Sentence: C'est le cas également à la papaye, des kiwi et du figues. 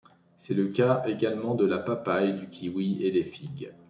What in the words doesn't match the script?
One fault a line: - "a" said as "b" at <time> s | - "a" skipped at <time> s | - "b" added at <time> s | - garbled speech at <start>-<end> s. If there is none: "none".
- "à" said as "de" at 1.5 s
- "des" said as "du" at 2.3 s
- "du" said as "des" at 3.1 s